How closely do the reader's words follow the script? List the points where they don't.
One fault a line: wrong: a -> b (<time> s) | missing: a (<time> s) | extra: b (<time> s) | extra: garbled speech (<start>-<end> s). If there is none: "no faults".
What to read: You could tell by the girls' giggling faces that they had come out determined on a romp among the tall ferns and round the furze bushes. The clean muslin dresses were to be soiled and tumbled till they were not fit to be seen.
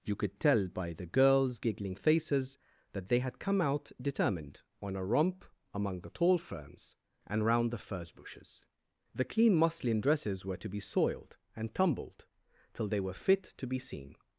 missing: not (13.1 s)